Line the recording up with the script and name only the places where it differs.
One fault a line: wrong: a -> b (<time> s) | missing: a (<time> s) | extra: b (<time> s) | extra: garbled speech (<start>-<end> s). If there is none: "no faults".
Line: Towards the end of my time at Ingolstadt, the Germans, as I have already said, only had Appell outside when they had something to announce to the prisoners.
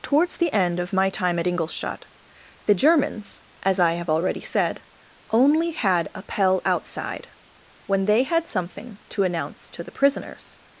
no faults